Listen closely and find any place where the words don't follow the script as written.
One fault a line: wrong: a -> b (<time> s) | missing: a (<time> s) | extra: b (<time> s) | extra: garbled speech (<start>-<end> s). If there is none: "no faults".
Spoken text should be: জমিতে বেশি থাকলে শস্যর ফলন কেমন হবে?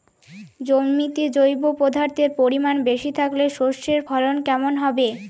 extra: জৈব পদার্থের পরিমাণ (1.4 s)